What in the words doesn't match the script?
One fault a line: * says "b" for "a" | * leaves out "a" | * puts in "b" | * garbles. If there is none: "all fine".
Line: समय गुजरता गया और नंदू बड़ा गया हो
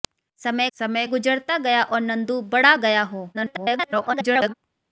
* puts in "समय"
* garbles